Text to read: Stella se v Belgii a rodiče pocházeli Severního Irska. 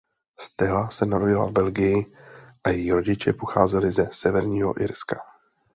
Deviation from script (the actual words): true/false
true